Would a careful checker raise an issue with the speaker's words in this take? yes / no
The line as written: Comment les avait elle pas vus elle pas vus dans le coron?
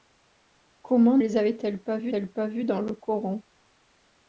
no